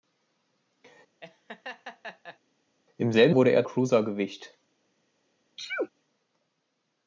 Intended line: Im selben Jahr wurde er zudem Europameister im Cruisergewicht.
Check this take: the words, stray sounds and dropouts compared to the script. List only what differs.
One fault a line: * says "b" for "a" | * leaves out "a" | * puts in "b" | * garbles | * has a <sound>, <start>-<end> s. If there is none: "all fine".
* has a laugh, 1.2-2.4 s
* leaves out "Jahr"
* leaves out "zudem Europameister im"
* has a sneeze, 5.6-5.9 s